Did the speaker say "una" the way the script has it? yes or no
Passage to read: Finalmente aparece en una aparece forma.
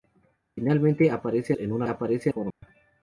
yes